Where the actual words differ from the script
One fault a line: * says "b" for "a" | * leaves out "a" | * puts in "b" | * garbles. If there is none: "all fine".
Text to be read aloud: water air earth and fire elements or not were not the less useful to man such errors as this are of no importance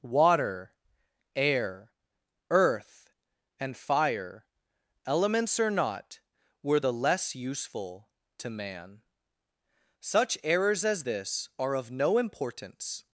* leaves out "not"